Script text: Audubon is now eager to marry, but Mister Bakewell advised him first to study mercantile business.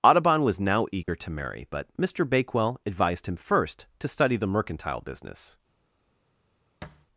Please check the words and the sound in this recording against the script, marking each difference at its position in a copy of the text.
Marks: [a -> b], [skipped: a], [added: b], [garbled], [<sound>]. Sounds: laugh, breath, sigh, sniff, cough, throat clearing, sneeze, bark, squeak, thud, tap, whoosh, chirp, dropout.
Audubon [is -> was] now eager [dropout] to marry, but Mister Bakewell advised him first to study [added: the] mercantile business. [thud]